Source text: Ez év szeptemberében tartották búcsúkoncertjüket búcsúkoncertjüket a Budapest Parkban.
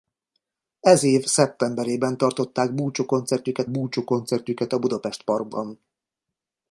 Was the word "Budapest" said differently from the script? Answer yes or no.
no